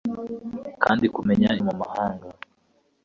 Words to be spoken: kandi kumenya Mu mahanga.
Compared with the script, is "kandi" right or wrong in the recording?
right